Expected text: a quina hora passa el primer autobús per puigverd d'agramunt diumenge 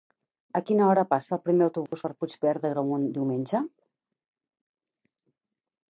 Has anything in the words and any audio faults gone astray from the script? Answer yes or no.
yes